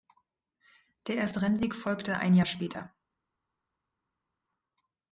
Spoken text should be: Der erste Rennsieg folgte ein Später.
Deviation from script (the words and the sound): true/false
true